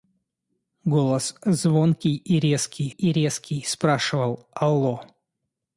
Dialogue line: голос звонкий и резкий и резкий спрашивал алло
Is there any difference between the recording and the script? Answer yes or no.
no